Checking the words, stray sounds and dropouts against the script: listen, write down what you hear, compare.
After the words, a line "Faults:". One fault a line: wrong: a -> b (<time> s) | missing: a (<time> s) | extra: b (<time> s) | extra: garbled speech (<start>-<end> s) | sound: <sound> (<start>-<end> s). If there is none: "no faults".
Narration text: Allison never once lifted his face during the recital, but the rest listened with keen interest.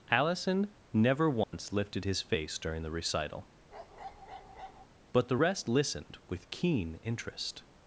Allison never once lifted his face during the recital, but the rest listened with keen interest.
Faults:
sound: dropout (1.4-1.5 s)
sound: bark (3.7-4.9 s)